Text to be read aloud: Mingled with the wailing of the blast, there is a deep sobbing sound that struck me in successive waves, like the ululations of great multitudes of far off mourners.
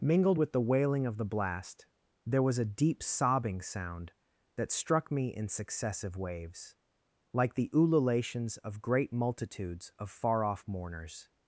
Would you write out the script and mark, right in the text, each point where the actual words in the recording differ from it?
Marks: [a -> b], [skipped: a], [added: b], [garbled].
Mingled with the wailing of the blast, there [is -> was] a deep sobbing sound that struck me in successive waves, like the ululations of great multitudes of far off mourners.